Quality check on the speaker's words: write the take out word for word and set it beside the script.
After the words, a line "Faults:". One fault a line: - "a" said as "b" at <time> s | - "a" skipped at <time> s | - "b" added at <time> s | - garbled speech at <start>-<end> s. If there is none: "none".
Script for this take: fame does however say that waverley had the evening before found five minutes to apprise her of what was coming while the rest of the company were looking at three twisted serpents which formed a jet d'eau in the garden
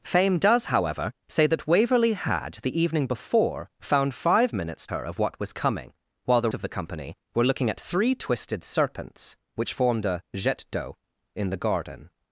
fame does however say that waverley had the evening before found five minutes her of what was coming while the of the company were looking at three twisted serpents which formed a jet d'eau in the garden
Faults:
- "to apprise" skipped at 4.9 s
- "rest" skipped at 6.5 s